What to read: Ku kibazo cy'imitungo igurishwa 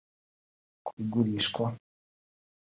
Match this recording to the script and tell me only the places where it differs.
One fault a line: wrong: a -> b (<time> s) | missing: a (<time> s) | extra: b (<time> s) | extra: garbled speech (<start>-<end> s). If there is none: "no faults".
missing: kibazo cy'imitungo (0.9 s)